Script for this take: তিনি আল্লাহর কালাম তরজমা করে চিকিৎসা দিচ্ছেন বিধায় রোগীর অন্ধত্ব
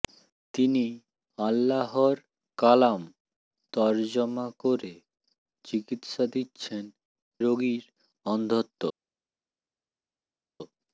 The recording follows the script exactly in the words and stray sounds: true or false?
false